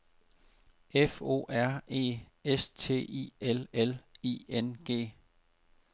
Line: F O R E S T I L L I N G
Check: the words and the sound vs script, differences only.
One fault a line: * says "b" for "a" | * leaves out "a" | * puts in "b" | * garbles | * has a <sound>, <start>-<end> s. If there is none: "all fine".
all fine